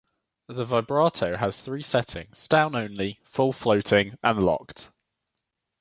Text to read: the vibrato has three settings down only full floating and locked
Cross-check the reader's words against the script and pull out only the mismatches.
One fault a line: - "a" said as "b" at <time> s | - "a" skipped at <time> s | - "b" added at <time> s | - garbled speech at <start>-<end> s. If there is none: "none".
none